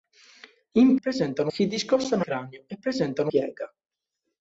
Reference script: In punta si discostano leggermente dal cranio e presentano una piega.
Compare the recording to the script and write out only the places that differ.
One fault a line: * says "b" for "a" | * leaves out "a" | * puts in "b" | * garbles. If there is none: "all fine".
* says "presentano" for "punta"
* leaves out "leggermente dal"
* leaves out "una"